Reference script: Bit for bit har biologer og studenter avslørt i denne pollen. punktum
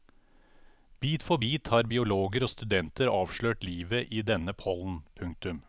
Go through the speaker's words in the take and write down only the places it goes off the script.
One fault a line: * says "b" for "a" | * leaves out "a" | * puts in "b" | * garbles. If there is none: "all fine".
* puts in "livet"